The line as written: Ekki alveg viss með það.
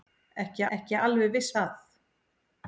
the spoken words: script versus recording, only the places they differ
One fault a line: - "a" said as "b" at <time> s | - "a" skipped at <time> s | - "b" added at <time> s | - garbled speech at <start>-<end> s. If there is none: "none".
- "ekki" added at 0.8 s
- "með" skipped at 1.5 s